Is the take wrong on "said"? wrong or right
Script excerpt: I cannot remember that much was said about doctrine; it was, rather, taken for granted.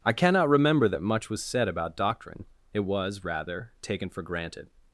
right